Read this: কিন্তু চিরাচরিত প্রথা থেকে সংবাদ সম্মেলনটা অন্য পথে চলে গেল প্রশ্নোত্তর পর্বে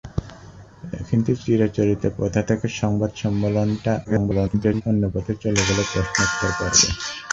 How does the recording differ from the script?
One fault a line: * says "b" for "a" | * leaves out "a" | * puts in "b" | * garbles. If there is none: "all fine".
* garbles